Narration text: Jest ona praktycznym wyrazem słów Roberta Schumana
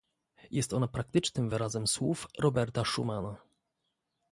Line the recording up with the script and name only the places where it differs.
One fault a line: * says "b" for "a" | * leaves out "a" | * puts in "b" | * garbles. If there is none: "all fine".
all fine